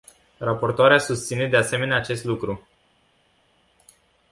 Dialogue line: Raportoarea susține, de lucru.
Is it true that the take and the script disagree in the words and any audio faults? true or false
true